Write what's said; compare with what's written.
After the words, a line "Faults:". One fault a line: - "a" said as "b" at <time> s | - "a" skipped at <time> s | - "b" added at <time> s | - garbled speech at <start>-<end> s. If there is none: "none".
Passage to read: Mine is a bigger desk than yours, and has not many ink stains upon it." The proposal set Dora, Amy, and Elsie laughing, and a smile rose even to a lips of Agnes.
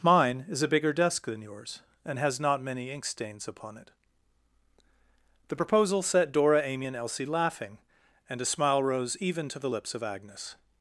Mine is a bigger desk than yours, and has not many ink stains upon it." The proposal set Dora, Amy, and Elsie laughing, and a smile rose even to the lips of Agnes.
Faults:
- "a" said as "the" at 9.6 s